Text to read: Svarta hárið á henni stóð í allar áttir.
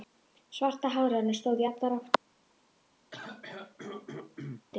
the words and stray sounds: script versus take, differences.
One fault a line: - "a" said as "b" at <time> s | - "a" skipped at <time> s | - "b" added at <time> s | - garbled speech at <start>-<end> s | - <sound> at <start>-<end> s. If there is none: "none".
- throat clearing at 3.1-4.7 s